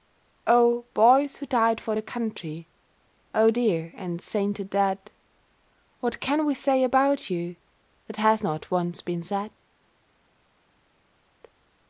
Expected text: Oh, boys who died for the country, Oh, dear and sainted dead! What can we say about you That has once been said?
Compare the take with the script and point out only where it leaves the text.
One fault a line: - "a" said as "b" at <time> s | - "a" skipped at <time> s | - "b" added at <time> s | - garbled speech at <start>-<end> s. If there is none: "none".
- "not" added at 8.4 s